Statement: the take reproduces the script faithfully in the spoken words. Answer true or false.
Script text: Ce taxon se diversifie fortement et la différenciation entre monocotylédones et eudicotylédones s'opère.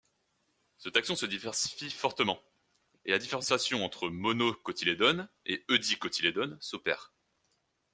true